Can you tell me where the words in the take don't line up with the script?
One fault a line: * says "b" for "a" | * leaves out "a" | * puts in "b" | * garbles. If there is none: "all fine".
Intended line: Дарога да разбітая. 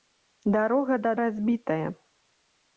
all fine